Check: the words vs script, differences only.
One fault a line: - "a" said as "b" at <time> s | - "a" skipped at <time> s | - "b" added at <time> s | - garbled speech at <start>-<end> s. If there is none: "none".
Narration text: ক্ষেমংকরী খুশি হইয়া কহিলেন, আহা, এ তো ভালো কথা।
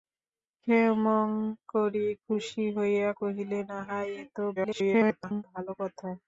- garbled speech at 4.6-5.4 s